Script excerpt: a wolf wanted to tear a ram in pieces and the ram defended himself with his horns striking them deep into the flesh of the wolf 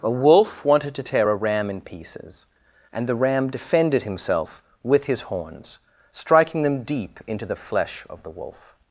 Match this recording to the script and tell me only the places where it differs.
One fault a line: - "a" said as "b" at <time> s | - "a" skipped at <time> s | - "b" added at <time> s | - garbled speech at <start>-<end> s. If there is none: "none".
none